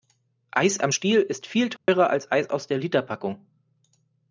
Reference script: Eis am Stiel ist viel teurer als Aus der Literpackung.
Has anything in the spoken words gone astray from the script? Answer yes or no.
yes